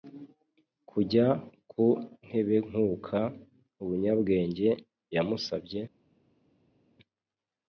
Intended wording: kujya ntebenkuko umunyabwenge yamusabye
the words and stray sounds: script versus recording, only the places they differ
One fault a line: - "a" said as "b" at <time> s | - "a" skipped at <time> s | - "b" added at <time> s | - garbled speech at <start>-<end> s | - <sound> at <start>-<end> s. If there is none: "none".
- "ku" added at 1.7 s